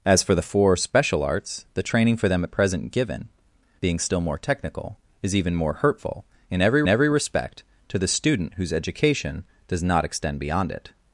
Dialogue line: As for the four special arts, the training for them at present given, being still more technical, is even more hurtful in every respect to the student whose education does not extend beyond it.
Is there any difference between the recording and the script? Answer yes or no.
yes